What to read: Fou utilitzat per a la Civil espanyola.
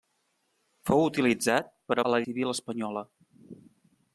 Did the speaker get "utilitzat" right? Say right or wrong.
right